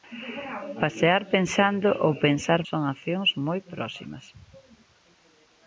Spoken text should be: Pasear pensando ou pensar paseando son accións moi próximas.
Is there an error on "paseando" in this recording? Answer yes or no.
yes